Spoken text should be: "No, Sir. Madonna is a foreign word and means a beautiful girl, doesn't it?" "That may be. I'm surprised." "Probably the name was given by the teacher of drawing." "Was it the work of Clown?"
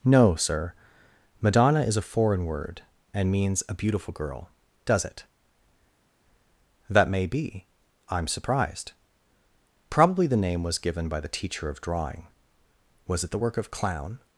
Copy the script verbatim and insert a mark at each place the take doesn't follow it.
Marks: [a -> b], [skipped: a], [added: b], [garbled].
"No, Sir. Madonna is a foreign word and means a beautiful girl, [doesn't -> does] it?" "That may be. I'm surprised." "Probably the name was given by the teacher of drawing." "Was it the work of Clown?"